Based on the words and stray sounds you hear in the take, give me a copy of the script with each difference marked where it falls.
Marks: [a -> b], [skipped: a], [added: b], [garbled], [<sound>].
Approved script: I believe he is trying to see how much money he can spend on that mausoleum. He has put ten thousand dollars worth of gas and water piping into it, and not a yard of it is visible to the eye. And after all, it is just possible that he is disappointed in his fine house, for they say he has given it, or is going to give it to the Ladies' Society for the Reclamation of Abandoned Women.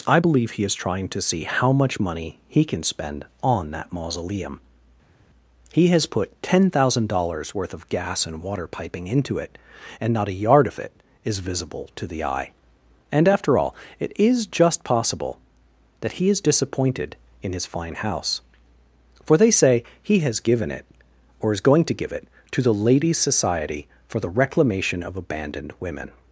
I believe he is trying to see how much money he can spend on that mausoleum. He has put ten thousand dollars worth of gas and water piping into it, and not a yard of it is visible to the eye. And after all, it is just possible that he is disappointed in his fine house, for they say he has given it, or is going to give it to the Ladies' Society for the Reclamation of Abandoned Women.